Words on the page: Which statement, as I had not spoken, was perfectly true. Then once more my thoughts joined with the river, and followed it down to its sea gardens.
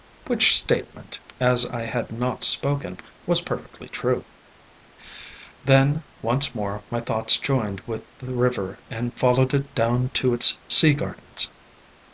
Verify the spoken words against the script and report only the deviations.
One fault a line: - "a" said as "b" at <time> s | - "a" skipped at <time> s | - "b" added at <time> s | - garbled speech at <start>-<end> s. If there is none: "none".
none